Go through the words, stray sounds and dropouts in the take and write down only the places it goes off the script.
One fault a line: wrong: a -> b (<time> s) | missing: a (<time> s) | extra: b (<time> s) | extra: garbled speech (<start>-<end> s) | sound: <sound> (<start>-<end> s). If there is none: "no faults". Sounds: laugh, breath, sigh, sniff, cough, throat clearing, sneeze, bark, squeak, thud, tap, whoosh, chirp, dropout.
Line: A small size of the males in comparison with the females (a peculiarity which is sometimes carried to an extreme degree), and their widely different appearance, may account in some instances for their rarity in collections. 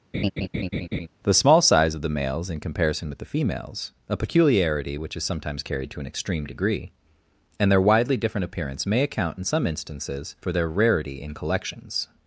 sound: laugh (0.1-1.1 s)
wrong: A -> The (1.2 s)